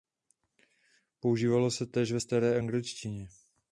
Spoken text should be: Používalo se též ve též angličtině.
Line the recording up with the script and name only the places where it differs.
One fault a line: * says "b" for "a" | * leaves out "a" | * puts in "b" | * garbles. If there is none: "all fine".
* says "staré" for "též"